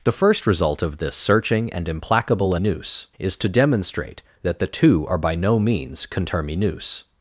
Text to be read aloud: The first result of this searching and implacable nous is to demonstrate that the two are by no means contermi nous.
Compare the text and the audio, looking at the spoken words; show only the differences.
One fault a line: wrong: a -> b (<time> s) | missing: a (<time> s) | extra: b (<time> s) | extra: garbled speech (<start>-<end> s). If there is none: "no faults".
no faults